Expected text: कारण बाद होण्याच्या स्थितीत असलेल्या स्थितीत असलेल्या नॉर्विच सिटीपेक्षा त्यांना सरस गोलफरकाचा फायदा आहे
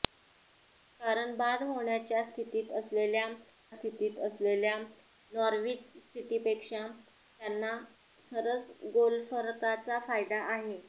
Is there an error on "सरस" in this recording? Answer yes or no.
no